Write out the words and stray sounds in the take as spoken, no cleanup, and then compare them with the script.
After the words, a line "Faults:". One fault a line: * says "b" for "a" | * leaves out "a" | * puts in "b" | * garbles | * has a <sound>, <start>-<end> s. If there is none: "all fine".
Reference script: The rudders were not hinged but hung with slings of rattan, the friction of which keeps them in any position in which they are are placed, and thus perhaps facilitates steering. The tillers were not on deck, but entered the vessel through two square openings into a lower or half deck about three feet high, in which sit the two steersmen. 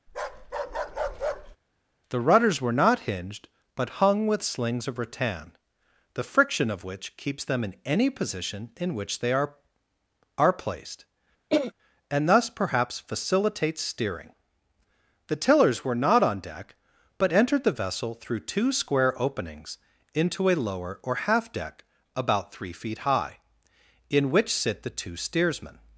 The rudders were not hinged but hung with slings of rattan, the friction of which keeps them in any position in which they are are placed, and thus perhaps facilitates steering. The tillers were not on deck, but entered the vessel through two square openings into a lower or half deck about three feet high, in which sit the two steersmen.
Faults:
* has a bark, 0.1-1.6 s
* has a throat clearing, 11.5-11.7 s